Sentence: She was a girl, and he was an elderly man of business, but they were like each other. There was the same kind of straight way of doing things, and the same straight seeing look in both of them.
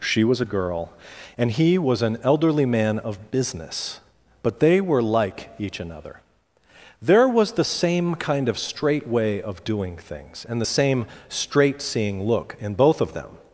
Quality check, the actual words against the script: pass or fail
fail